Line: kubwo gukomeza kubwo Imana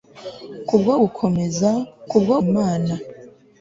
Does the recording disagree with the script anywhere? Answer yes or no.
no